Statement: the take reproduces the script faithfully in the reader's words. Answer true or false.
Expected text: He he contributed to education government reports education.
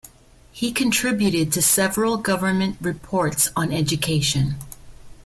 false